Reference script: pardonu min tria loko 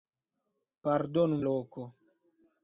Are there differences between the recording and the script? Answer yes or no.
yes